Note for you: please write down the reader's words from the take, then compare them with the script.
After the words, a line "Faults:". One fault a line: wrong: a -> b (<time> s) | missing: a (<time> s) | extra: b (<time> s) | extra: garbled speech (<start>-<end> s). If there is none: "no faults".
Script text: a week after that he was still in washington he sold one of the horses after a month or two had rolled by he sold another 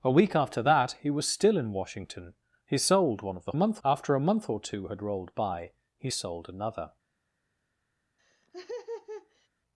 a week after that he was still in washington he sold one of the month after a month or two had rolled by he sold another
Faults:
wrong: horses -> month (3.5 s)